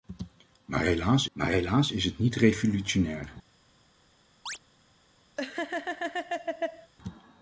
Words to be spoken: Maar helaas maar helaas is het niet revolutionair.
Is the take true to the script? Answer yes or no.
yes